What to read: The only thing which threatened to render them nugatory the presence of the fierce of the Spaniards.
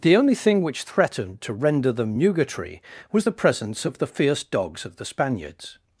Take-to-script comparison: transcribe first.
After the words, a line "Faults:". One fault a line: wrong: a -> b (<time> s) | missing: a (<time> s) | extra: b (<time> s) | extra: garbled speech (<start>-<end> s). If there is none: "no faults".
The only thing which threatened to render them nugatory was the presence of the fierce dogs of the Spaniards.
Faults:
extra: was (3.1 s)
extra: dogs (4.4 s)